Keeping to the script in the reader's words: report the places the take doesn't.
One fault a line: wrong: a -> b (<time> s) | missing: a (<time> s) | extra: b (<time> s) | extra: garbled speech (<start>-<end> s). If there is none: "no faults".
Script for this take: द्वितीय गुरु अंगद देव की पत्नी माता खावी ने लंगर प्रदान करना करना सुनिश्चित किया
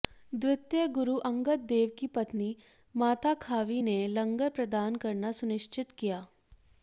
missing: करना (5.3 s)